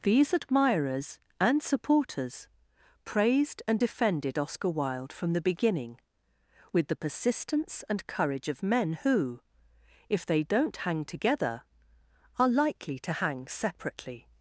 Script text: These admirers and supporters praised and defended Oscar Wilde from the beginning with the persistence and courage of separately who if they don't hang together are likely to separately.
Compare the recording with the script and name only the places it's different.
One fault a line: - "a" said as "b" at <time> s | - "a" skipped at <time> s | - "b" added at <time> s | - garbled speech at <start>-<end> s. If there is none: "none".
- "separately" said as "men" at 8.6 s
- "hang" added at 13.1 s